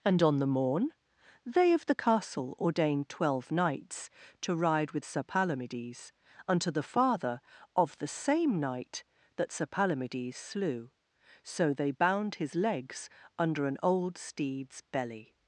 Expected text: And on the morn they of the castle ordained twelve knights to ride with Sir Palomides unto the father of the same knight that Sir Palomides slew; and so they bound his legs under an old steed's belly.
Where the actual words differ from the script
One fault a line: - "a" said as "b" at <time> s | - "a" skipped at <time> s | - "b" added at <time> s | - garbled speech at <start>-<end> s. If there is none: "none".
- "and" skipped at 10.9 s